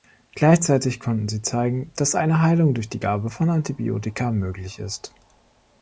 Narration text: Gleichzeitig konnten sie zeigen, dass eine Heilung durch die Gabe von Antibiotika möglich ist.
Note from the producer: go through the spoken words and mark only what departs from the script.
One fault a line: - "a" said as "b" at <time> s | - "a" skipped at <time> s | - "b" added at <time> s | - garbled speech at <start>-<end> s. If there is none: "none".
none